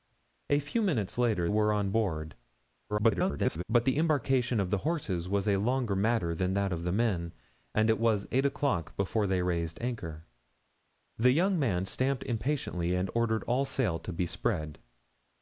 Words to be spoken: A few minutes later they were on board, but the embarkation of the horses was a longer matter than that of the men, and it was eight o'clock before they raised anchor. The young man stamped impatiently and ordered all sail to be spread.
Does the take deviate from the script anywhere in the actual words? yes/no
yes